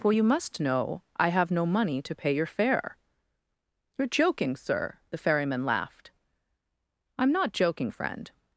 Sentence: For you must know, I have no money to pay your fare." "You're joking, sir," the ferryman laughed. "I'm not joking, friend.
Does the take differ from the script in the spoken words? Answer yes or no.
no